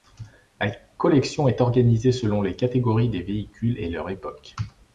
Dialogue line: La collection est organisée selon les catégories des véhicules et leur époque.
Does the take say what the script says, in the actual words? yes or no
yes